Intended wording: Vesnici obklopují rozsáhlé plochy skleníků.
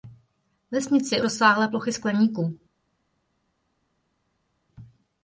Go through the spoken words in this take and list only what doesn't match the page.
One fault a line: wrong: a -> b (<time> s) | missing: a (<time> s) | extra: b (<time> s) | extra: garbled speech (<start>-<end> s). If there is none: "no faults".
missing: obklopují (1.2 s)